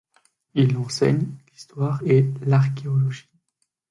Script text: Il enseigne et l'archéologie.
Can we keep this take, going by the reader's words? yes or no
no